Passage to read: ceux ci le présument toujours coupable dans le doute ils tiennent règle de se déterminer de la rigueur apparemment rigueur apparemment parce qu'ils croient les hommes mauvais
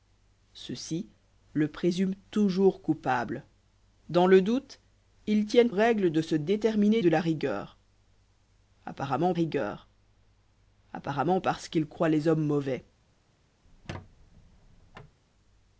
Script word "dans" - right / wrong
right